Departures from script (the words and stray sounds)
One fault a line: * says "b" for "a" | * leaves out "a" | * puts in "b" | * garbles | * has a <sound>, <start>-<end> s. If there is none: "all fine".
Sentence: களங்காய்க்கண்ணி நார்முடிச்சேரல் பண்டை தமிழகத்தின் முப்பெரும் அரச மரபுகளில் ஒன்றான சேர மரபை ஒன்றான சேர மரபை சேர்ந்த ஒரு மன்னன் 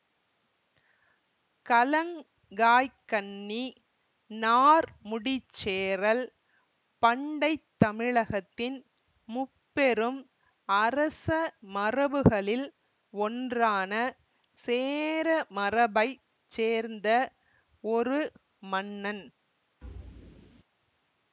* leaves out "ஒன்றான சேர மரபை"
* has a thud, 19.8-20.6 s